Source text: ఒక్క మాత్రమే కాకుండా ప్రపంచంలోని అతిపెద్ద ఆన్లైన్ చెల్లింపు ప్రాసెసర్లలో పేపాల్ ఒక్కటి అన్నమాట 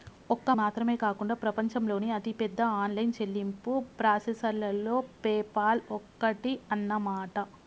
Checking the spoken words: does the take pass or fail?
pass